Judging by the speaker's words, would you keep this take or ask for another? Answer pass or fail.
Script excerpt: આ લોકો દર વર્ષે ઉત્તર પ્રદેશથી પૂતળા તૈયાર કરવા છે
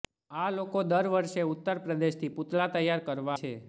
pass